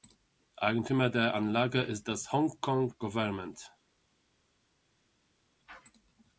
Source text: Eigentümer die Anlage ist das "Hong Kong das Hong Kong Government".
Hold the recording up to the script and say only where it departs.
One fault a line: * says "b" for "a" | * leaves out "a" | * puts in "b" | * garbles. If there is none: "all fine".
* says "der" for "die"
* leaves out "das Hong Kong"